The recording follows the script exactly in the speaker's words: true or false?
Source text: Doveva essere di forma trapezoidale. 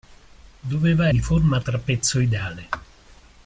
false